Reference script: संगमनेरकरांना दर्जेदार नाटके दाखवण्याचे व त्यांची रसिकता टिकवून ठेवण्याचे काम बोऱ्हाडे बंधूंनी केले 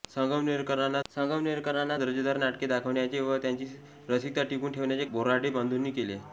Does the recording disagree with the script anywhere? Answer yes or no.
yes